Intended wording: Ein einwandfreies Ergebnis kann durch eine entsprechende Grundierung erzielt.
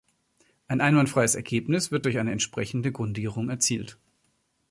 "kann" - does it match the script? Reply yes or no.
no